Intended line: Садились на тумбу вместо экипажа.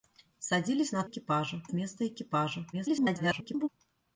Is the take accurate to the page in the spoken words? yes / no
no